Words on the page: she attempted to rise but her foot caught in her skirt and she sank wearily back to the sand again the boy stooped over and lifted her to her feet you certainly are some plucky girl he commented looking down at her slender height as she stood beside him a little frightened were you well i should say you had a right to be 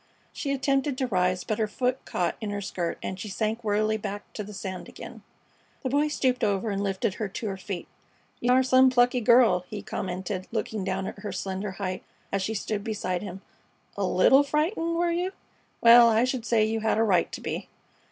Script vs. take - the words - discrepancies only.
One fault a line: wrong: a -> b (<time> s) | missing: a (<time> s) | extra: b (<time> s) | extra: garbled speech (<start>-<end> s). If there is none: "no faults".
missing: certainly (8.5 s)